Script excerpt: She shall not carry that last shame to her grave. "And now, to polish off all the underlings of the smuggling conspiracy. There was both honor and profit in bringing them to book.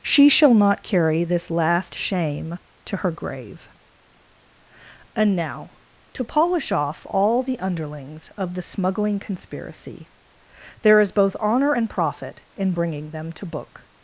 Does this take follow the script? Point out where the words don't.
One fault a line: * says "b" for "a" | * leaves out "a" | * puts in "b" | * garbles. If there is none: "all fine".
* says "this" for "that"
* says "is" for "was"